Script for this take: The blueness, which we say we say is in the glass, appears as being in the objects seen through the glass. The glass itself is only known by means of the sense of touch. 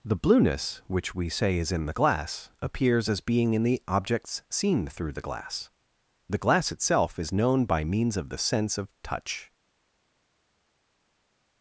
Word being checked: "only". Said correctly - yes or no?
no